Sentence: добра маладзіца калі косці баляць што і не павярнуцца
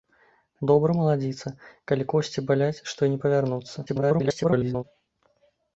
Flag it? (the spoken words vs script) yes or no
yes